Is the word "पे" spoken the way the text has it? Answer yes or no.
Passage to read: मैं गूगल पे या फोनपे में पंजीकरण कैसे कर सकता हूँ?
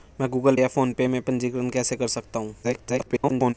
no